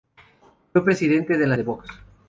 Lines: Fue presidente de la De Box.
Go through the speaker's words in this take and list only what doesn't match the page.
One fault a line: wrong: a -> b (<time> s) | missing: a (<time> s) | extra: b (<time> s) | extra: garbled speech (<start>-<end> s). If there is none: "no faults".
no faults